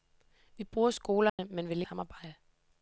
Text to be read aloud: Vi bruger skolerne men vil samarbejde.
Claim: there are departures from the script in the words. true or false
false